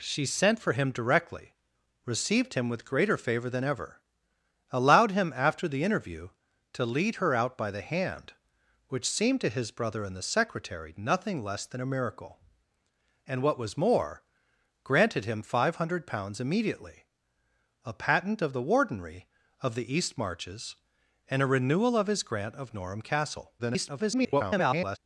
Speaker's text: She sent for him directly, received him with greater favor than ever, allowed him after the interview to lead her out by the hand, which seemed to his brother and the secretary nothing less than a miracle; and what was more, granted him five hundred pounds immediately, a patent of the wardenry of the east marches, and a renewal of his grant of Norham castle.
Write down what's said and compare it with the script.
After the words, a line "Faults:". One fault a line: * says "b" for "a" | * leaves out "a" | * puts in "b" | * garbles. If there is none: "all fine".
She sent for him directly, received him with greater favor than ever, allowed him after the interview to lead her out by the hand, which seemed to his brother and the secretary nothing less than a miracle; and what was more, granted him five hundred pounds immediately, a patent of the wardenry of the east marches, and a renewal of his grant of Norham castle. [garbled]
Faults:
* garbles